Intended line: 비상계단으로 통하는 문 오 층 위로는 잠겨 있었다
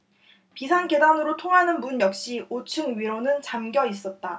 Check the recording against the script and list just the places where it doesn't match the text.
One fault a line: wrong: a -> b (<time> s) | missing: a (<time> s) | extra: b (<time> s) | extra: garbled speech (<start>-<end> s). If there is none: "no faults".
extra: 역시 (2.0 s)